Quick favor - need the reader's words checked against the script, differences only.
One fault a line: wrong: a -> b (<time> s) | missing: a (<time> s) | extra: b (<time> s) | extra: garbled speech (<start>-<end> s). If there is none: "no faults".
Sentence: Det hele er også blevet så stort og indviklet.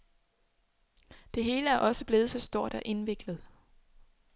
no faults